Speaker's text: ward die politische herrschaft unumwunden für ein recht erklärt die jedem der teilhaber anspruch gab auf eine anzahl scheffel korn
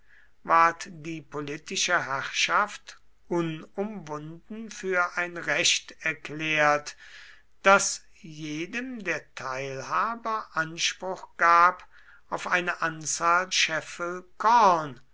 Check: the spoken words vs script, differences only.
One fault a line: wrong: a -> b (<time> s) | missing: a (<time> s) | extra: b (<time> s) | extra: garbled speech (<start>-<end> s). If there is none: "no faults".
wrong: die -> das (7.6 s)